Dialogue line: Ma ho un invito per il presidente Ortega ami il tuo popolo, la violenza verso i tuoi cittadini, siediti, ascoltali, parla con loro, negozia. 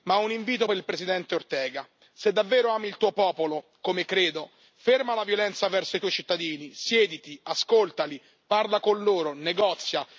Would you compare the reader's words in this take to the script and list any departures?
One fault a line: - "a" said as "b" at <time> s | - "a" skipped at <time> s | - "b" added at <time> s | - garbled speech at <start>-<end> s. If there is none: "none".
- "se davvero" added at 2.2 s
- "come credo ferma" added at 3.8 s